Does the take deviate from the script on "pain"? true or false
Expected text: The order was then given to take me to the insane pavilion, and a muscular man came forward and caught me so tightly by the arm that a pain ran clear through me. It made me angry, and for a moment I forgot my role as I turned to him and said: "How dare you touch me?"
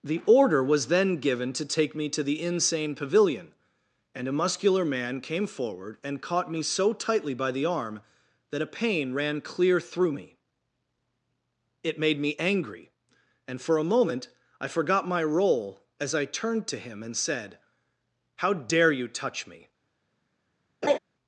false